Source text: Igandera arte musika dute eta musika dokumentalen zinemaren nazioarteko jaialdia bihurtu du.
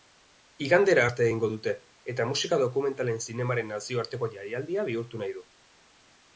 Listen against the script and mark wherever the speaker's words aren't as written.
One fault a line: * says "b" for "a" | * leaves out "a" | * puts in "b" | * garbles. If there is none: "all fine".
* says "egingo" for "musika"
* puts in "nahi"